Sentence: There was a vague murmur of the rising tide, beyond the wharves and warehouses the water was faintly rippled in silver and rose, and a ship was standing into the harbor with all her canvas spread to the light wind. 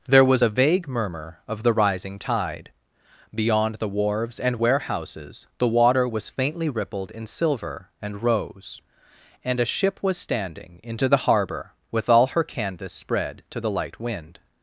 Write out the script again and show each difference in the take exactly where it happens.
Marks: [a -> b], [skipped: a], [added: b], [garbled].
There was a vague murmur of the rising tide, beyond the wharves and warehouses the water was faintly rippled in silver and rose, and a ship was standing into the harbor with all her canvas spread to the light wind.